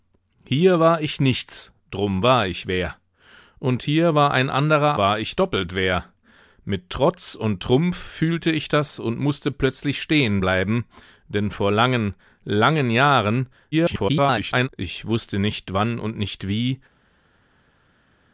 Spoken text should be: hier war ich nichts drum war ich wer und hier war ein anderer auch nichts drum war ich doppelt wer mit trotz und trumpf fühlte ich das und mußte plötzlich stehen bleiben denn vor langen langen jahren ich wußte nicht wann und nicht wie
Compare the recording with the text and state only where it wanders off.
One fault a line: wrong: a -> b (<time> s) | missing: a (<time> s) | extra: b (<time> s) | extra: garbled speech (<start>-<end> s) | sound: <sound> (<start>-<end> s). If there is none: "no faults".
missing: auch nichts drum (5.0 s)
extra: garbled speech (13.7-14.7 s)